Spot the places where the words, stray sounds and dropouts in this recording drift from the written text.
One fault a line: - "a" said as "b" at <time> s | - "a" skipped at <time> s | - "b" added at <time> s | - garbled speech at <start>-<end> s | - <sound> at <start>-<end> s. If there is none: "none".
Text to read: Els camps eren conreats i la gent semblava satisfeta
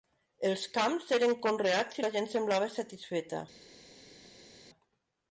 none